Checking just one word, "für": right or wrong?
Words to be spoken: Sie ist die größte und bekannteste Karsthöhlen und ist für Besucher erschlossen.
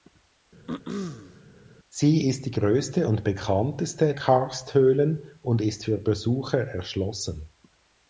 right